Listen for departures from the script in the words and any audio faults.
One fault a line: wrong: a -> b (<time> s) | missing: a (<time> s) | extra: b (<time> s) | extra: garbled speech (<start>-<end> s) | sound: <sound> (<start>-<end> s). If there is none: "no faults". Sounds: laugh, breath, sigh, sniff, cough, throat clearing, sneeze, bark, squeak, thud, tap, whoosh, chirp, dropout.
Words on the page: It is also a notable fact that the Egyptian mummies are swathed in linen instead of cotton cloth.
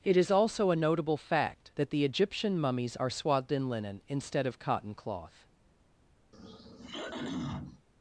sound: throat clearing (6.3-7.9 s)